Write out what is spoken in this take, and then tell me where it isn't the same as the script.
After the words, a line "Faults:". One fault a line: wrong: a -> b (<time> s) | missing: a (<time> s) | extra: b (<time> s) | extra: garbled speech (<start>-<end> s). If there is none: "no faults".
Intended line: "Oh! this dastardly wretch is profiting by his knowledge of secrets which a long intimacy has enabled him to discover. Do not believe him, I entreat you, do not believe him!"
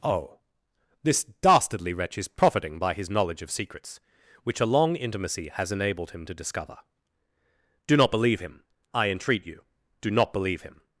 "Oh! this dastardly wretch is profiting by his knowledge of secrets which a long intimacy has enabled him to discover. Do not believe him, I entreat you, do not believe him!"
Faults:
no faults